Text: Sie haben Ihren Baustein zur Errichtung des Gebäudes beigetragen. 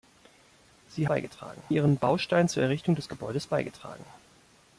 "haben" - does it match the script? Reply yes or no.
no